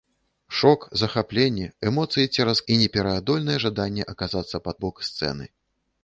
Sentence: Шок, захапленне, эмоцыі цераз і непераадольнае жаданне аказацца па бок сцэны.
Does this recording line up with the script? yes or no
yes